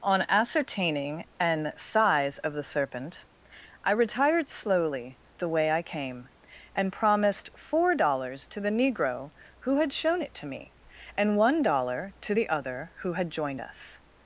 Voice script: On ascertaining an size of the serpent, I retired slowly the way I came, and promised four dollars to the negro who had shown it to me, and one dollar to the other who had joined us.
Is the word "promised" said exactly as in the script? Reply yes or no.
yes